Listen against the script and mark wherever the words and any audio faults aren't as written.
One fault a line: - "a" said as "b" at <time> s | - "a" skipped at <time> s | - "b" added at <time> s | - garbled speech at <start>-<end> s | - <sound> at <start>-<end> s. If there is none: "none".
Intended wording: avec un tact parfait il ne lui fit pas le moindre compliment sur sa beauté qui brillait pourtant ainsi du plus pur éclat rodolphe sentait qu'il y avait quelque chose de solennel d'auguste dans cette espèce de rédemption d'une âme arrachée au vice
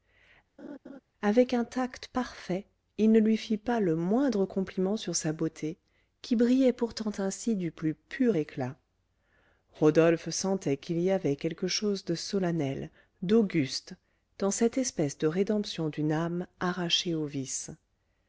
- laugh at 0.6-1.0 s